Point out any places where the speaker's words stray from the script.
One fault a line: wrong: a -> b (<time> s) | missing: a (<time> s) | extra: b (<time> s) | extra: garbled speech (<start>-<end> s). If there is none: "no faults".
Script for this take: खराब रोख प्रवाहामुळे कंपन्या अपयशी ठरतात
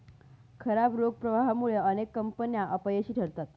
extra: अनेक (1.8 s)